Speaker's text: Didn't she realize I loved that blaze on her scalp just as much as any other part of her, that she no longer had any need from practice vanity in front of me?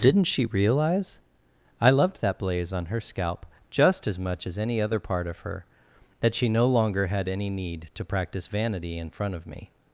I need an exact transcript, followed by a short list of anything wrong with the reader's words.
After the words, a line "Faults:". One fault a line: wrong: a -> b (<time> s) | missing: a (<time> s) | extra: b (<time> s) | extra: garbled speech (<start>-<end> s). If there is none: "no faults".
Didn't she realize I loved that blaze on her scalp just as much as any other part of her, that she no longer had any need to practice vanity in front of me?
Faults:
wrong: from -> to (8.0 s)